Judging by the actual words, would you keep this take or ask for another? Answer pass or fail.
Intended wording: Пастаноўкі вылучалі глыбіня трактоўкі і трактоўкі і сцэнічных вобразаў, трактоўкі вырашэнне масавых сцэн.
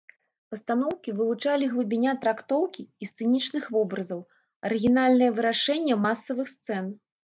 fail